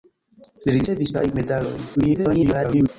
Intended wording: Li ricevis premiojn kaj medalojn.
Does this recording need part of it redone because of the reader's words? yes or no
yes